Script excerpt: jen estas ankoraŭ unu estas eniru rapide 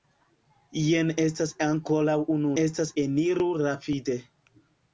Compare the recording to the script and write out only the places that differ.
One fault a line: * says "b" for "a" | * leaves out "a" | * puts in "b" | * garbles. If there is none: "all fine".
all fine